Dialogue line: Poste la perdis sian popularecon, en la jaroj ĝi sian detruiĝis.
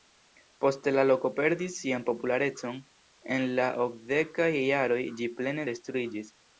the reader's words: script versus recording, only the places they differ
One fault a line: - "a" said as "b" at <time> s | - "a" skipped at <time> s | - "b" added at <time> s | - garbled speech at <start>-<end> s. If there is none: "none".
- "loko" added at 1.1 s
- "okdekaj" added at 3.9 s
- "sian" said as "plene" at 5.4 s